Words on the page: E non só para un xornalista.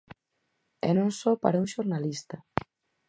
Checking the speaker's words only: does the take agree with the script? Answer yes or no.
yes